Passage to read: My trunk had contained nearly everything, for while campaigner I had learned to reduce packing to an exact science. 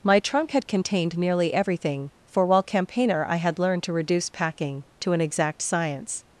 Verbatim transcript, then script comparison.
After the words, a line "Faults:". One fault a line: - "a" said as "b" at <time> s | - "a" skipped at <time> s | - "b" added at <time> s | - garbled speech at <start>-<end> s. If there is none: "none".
My trunk had contained nearly everything, for while campaigner I had learned to reduce packing to an exact science.
Faults:
none